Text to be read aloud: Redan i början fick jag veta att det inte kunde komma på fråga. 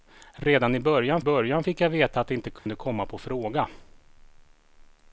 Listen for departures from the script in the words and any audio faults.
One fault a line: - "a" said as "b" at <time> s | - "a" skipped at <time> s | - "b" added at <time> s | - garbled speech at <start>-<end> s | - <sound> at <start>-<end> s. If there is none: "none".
- "början" added at 1.2 s
- dropout at 2.6-2.7 s